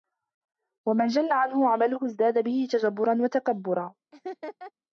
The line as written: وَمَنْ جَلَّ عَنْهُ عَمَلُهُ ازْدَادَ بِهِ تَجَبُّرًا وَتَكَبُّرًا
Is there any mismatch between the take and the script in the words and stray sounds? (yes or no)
yes